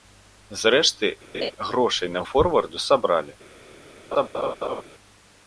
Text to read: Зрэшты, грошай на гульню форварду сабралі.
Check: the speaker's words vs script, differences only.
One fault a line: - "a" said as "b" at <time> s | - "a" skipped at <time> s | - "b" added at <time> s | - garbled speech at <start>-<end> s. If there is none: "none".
- "гульню" skipped at 2.2 s